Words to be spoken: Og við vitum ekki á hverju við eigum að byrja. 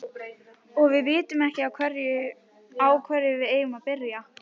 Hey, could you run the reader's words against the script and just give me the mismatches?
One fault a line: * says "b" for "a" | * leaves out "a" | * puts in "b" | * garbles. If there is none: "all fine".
all fine